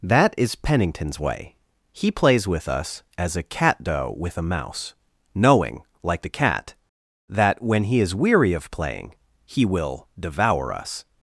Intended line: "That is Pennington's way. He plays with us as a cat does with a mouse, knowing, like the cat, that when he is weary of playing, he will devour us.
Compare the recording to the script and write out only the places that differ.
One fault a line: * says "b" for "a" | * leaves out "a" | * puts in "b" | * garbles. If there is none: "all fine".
* says "doe" for "does"